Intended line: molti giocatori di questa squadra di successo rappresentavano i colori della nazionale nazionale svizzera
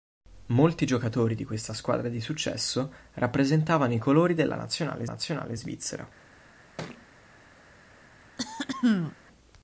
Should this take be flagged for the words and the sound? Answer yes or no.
yes